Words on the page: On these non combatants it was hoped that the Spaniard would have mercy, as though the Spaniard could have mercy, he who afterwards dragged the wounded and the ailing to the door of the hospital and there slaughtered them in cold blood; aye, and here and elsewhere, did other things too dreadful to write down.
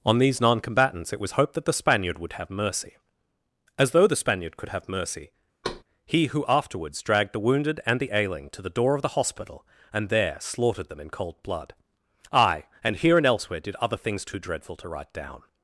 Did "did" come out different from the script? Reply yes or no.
no